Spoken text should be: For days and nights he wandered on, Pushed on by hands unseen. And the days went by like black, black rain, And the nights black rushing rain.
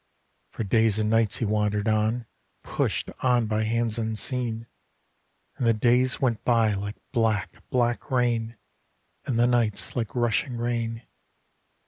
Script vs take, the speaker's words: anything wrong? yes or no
yes